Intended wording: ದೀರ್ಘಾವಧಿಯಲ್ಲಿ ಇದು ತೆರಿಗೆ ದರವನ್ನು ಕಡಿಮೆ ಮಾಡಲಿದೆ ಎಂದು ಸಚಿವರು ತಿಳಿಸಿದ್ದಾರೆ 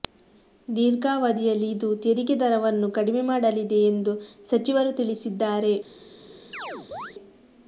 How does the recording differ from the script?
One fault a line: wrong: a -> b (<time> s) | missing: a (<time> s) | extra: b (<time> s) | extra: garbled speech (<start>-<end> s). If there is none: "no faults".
no faults